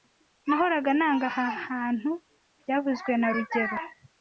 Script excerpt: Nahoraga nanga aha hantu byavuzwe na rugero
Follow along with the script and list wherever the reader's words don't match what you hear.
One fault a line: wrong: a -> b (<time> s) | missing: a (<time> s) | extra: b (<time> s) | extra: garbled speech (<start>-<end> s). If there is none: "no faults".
no faults